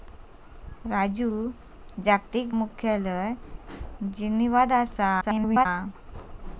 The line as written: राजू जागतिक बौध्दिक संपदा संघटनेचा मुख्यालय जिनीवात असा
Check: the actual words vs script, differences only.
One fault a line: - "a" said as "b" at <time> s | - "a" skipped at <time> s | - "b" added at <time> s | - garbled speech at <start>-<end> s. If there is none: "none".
- "बौध्दिक संपदा संघटनेचा" skipped at 2.6 s
- garbled speech at 5.2-5.7 s